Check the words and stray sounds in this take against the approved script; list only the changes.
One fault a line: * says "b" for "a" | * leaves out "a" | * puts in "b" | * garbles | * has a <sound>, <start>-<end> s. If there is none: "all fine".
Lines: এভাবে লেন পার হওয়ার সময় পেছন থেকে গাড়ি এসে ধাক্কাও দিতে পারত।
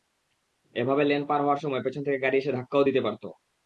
all fine